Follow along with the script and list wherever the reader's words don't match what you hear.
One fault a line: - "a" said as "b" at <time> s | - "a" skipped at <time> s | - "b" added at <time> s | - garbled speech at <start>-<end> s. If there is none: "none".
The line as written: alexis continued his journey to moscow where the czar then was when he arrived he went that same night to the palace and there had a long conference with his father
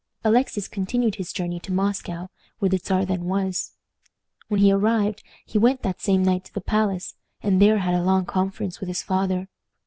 none